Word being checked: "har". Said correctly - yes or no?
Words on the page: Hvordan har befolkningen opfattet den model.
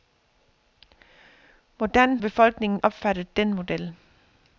no